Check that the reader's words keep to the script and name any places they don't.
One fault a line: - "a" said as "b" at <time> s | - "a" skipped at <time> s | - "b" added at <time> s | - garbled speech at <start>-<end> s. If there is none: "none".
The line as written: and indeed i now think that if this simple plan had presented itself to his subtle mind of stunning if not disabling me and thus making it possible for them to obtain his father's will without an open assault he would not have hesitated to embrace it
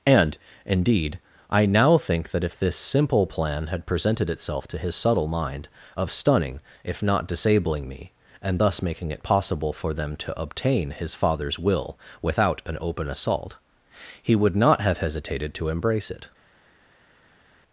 none